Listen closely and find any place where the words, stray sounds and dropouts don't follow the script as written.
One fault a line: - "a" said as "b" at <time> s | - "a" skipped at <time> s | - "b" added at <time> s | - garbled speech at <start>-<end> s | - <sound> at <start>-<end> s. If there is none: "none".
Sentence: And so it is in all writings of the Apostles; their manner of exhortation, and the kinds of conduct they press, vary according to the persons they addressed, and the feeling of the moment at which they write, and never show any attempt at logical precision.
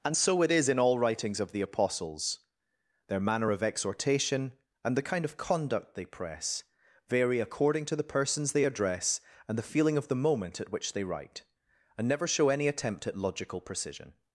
- "kinds" said as "kind" at 5.1 s
- "addressed" said as "address" at 8.7 s